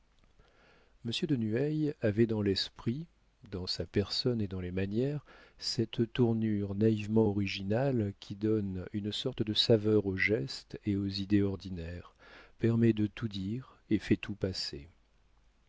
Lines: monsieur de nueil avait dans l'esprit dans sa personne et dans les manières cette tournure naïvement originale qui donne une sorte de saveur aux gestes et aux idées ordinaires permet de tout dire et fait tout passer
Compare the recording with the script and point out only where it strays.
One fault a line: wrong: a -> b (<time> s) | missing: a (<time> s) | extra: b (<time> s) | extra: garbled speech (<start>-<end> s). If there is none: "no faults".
no faults